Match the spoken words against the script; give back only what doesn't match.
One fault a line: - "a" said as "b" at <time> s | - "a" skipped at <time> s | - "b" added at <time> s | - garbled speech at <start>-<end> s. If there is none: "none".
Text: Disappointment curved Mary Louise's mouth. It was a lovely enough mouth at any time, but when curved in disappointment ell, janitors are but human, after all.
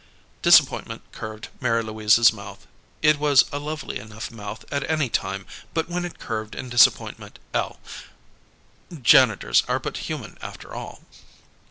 - "it" added at 6.0 s